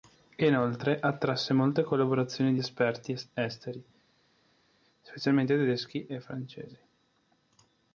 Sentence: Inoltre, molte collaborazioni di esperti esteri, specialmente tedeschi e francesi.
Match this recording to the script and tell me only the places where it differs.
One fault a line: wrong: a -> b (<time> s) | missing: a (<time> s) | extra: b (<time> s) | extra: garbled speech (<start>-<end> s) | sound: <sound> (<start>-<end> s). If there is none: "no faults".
extra: attrasse (1.0 s)